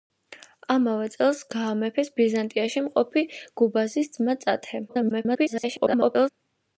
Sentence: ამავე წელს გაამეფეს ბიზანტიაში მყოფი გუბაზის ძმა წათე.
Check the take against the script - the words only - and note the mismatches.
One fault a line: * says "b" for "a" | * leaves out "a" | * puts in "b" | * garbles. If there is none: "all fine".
* garbles